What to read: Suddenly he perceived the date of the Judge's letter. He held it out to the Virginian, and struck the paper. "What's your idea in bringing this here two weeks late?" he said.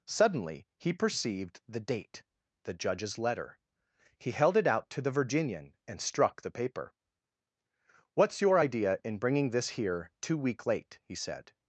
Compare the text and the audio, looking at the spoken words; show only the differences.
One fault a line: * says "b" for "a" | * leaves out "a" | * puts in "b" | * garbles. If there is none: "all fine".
* leaves out "of"
* says "week" for "weeks"